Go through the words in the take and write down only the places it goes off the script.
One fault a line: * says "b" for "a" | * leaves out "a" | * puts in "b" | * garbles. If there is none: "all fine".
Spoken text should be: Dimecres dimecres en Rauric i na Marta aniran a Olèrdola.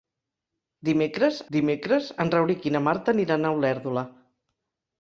all fine